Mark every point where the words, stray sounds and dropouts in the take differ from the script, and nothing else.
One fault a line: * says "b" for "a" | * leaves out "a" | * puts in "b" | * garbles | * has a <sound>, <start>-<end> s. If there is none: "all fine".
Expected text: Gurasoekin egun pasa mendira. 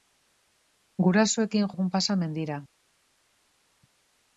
all fine